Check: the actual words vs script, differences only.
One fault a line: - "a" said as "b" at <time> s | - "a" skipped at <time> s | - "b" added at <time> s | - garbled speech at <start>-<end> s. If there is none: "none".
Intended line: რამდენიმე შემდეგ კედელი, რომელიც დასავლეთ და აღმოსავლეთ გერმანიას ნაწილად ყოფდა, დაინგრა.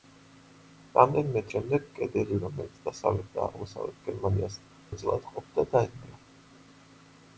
none